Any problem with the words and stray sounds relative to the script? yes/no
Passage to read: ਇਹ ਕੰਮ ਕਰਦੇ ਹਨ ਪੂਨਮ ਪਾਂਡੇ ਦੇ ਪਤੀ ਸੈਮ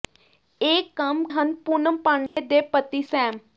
yes